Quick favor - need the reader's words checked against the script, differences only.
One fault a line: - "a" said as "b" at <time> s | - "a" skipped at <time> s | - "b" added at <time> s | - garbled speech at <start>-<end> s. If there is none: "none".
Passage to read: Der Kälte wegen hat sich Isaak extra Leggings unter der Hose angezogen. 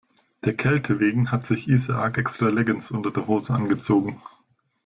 none